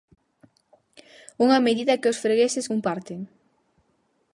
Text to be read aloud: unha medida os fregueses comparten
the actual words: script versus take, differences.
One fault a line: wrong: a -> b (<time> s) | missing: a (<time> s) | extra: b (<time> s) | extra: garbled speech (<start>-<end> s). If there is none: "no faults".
extra: que (2.0 s)